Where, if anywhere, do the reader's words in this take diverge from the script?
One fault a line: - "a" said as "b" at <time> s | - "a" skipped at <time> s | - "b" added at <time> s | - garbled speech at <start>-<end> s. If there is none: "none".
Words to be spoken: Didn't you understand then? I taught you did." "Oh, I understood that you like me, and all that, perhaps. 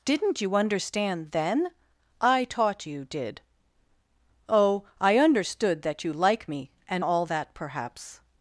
none